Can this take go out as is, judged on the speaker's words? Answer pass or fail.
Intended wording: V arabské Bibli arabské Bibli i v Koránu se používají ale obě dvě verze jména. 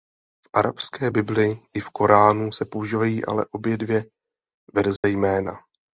fail